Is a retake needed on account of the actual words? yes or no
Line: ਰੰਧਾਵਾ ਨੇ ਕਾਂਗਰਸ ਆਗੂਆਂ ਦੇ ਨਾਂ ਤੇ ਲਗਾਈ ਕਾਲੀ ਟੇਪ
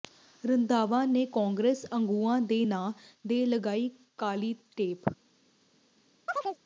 no